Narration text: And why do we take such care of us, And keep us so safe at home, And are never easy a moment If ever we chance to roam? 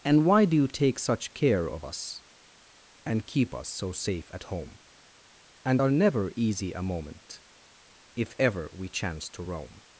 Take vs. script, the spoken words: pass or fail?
fail